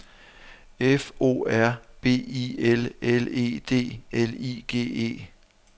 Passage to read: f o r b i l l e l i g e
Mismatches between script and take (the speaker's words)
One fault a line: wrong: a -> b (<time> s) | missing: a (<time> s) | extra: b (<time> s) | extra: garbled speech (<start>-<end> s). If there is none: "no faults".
extra: d (3.6 s)